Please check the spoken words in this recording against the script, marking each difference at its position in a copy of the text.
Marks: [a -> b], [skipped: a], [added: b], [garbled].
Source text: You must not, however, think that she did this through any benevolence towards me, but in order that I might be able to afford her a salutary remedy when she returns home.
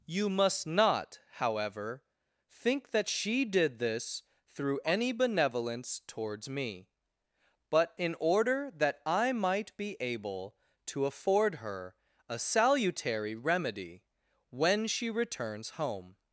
You must not, however, think that she did this through any benevolence towards me, but in order that I might be able to afford her a salutary remedy when she returns home.